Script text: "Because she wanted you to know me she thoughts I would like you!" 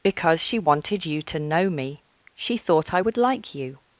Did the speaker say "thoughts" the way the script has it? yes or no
no